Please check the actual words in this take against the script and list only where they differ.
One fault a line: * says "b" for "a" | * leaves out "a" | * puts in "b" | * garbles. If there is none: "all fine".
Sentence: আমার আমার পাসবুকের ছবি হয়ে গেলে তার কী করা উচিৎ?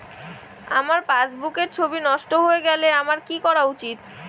* leaves out "আমার"
* puts in "নষ্ট"
* says "আমার" for "তার"